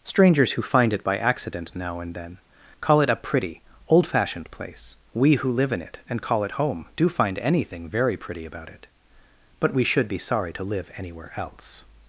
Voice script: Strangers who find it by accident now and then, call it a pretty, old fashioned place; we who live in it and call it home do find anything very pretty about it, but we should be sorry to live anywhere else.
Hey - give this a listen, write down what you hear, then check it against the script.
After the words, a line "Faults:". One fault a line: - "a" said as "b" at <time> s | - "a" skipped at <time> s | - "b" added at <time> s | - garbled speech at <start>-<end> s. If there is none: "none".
Strangers who find it by accident now and then, call it a pretty, old fashioned place; we who live in it and call it home do find anything very pretty about it, but we should be sorry to live anywhere else.
Faults:
none